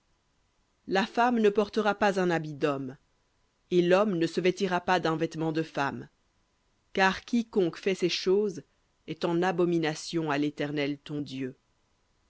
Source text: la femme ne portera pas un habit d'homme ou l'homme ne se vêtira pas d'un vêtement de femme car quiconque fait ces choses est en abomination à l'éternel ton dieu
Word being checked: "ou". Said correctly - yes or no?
no